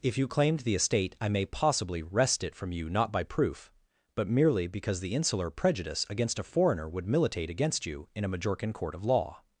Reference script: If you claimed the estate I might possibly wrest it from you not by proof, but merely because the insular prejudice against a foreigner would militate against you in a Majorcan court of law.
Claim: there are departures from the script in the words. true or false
true